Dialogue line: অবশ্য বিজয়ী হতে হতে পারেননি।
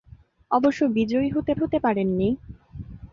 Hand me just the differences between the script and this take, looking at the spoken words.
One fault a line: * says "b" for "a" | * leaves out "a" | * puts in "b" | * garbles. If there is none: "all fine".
all fine